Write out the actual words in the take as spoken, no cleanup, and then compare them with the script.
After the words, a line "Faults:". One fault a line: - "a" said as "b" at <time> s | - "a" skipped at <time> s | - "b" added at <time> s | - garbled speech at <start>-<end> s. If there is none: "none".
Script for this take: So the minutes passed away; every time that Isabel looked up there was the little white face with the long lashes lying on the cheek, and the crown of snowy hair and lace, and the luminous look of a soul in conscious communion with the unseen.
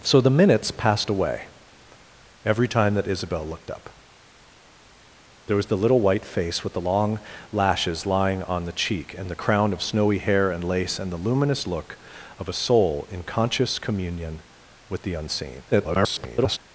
So the minutes passed away; every time that Isabel looked up there was the little white face with the long lashes lying on the cheek, and the crown of snowy hair and lace, and the luminous look of a soul in conscious communion with the unseen. [garbled]
Faults:
- garbled speech at 15.7-16.6 s